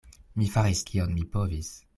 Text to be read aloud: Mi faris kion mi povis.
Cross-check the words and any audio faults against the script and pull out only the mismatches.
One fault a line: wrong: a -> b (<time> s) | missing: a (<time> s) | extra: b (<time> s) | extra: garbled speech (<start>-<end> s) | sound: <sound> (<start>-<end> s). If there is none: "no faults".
no faults